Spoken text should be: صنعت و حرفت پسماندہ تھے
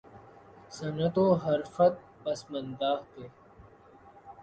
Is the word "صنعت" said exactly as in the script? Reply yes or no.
yes